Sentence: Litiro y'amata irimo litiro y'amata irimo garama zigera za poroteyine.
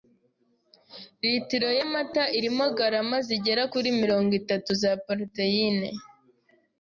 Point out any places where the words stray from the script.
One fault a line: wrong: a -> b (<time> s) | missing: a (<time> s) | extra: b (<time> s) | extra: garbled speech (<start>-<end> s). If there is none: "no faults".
wrong: litiro y'amata irimo garama zigera -> garama zigera kuri mirongo itatu (2.8 s)